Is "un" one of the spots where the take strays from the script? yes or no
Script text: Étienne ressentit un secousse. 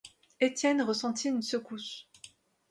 yes